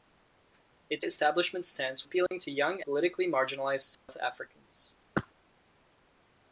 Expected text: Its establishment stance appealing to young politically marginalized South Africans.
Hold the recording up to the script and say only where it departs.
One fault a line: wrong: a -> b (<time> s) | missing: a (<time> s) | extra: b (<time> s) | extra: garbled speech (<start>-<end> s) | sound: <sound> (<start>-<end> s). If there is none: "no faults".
sound: dropout (2.3-2.3 s)
sound: dropout (3.9-4.1 s)